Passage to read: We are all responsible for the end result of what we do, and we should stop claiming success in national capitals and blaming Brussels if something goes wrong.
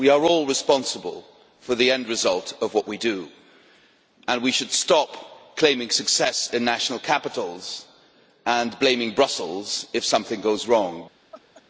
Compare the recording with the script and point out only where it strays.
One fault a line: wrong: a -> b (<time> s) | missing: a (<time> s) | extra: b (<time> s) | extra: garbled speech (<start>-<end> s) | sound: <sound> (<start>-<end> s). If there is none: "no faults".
sound: laugh (11.3-11.6 s)